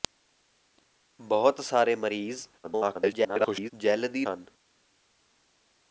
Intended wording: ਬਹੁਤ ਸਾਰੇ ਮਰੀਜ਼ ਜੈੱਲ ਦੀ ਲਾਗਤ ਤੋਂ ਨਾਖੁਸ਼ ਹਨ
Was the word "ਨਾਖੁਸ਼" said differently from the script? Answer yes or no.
yes